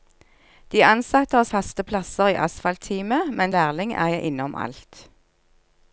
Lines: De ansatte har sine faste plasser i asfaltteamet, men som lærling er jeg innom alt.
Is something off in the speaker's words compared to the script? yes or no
yes